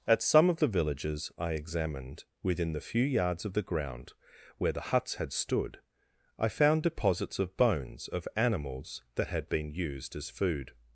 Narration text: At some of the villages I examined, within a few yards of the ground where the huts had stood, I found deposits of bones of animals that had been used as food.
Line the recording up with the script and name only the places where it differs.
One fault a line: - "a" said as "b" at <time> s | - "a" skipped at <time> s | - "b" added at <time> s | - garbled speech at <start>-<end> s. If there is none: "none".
- "a" said as "the" at 2.7 s